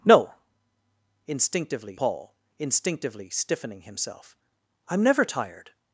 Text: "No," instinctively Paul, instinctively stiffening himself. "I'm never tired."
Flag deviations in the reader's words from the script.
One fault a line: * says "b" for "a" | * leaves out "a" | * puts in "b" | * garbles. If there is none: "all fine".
all fine